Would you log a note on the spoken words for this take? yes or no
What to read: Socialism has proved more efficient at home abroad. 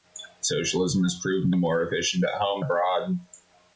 no